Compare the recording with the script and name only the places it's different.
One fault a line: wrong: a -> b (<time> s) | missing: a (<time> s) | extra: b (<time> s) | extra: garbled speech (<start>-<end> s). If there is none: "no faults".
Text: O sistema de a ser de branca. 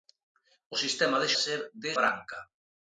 no faults